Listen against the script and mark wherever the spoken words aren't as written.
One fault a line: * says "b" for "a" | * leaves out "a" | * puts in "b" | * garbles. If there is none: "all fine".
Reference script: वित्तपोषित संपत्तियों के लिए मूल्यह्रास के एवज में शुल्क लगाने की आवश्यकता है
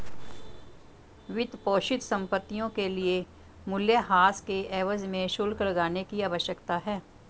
all fine